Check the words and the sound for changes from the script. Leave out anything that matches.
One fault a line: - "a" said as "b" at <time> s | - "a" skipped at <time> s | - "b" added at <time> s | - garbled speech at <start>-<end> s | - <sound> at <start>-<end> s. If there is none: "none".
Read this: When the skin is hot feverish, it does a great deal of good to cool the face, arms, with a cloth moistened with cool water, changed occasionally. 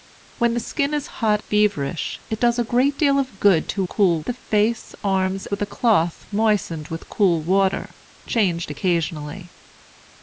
none